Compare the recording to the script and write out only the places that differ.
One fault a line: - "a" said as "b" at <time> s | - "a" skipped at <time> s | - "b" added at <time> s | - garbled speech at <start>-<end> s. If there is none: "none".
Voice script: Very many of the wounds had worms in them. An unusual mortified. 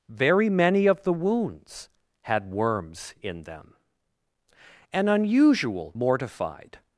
none